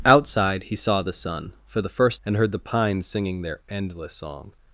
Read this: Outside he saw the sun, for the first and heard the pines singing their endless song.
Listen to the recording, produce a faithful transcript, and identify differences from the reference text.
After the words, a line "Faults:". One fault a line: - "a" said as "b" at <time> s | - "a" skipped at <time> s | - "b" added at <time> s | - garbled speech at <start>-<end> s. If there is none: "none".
Outside he saw the sun, for the first and heard the pines singing their endless song.
Faults:
none